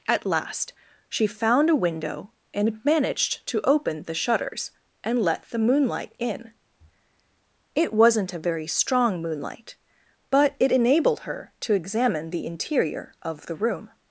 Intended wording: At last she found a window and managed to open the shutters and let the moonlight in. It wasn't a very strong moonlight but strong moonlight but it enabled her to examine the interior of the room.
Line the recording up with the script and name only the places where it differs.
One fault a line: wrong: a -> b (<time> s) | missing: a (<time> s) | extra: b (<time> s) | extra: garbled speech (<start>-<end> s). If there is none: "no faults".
missing: strong moonlight but (10.6 s)